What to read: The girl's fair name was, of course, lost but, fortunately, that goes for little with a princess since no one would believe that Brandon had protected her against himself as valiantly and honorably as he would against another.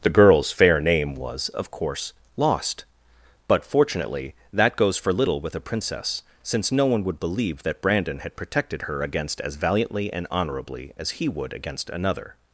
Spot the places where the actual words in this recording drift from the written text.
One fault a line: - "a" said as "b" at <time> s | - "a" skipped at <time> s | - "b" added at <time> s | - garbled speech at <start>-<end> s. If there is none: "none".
- "himself" skipped at 9.4 s